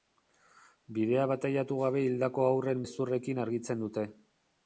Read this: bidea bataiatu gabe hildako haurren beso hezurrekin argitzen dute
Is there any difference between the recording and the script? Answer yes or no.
yes